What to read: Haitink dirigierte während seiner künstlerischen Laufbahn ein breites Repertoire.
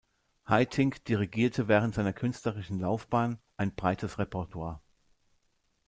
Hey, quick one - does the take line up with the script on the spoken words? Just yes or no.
yes